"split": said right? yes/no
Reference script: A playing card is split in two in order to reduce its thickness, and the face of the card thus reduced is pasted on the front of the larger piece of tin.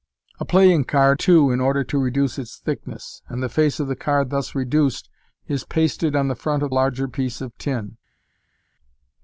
no